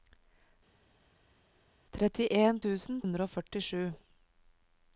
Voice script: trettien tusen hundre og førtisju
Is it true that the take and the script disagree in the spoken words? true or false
false